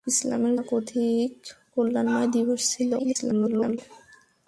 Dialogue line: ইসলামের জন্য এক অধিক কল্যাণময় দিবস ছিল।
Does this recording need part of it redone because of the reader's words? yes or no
yes